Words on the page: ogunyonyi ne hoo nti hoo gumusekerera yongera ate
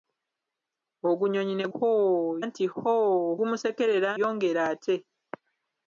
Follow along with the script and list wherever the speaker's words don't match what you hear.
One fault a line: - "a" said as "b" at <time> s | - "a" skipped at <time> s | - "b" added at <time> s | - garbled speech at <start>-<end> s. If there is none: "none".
none